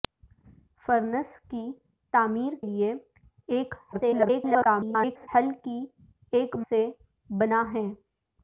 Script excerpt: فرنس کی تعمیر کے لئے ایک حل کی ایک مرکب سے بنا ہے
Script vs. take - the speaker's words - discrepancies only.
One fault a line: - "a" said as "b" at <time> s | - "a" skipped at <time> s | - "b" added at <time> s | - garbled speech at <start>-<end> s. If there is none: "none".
- "کے" skipped at 2.5 s
- garbled speech at 3.9-5.3 s
- "مرکب" skipped at 6.6 s